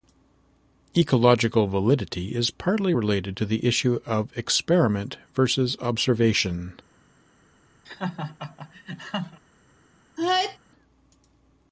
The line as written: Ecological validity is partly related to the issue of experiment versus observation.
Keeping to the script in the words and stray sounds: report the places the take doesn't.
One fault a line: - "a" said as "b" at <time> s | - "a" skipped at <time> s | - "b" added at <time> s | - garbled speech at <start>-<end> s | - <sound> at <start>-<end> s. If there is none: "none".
- laugh at 7.8-9.4 s
- sneeze at 10.2-10.6 s